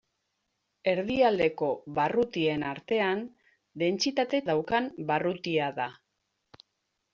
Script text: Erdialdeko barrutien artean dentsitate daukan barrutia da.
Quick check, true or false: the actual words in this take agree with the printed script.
true